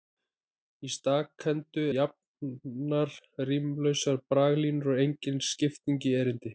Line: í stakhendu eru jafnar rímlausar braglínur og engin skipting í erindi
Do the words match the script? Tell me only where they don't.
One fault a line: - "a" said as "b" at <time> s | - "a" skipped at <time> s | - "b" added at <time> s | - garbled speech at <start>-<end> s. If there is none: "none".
- "eru" skipped at 1.8 s